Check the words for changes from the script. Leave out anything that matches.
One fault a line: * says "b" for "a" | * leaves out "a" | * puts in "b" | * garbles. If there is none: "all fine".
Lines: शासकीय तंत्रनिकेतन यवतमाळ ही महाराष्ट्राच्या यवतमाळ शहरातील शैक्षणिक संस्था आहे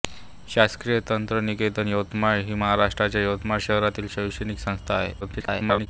* garbles